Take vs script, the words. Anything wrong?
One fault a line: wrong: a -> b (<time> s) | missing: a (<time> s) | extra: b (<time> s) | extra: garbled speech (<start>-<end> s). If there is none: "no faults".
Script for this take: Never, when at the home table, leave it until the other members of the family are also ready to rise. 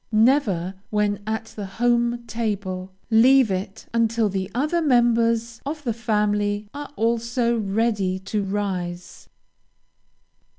no faults